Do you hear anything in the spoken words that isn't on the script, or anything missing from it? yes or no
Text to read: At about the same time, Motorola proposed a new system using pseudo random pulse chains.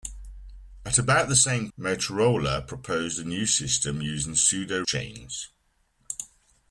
yes